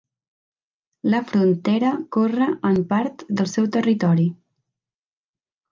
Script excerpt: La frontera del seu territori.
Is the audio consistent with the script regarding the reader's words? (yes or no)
no